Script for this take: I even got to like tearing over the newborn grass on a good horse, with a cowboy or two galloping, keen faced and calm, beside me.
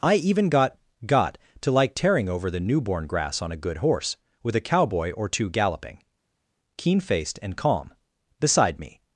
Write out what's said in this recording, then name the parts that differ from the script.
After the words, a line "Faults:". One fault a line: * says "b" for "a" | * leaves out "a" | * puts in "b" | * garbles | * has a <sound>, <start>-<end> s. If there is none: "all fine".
I even got got to like tearing over the newborn grass on a good horse, with a cowboy or two galloping, keen faced and calm, beside me.
Faults:
* puts in "got"